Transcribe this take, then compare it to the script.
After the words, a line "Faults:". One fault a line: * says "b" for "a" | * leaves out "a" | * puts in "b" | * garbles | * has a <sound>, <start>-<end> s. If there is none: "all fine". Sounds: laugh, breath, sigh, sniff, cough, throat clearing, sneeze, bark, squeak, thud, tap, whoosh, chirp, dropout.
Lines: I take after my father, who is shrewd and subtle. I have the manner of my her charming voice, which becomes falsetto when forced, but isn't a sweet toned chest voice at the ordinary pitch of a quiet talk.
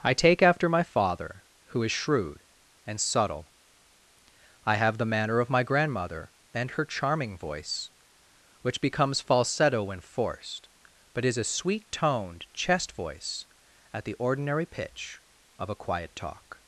I take after my father, who is shrewd and subtle. I have the manner of my grandmother and her charming voice, which becomes falsetto when forced, but is a sweet toned chest voice at the ordinary pitch of a quiet talk.
Faults:
* puts in "grandmother and"
* says "is" for "isn't"